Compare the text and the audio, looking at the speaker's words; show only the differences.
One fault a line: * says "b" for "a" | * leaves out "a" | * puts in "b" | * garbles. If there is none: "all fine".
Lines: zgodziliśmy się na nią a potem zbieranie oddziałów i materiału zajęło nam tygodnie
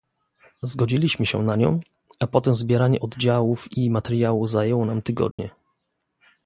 all fine